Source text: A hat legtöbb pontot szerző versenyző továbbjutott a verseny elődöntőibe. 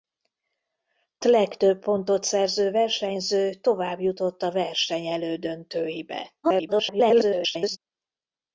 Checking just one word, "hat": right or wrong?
wrong